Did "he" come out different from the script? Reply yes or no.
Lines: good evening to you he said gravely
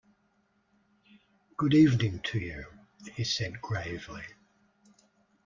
no